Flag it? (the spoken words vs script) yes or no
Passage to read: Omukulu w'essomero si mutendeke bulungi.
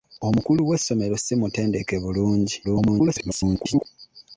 yes